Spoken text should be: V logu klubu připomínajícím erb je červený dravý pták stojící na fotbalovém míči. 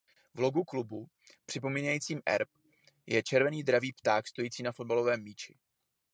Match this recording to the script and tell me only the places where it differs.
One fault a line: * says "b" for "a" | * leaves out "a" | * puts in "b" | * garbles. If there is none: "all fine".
all fine